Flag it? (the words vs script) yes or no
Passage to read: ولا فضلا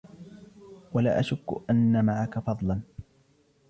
yes